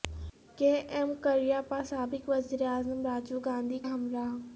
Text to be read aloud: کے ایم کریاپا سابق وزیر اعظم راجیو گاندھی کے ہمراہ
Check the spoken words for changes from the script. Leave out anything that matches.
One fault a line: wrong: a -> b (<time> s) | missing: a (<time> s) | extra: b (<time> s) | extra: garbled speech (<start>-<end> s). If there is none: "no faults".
missing: کے (3.8 s)